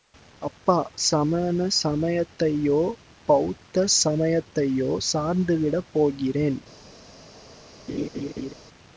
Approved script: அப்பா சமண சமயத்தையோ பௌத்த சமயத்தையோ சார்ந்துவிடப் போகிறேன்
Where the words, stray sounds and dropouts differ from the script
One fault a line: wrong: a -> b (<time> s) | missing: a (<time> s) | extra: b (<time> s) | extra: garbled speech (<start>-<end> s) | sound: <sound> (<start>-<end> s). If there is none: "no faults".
sound: laugh (7.9-8.5 s)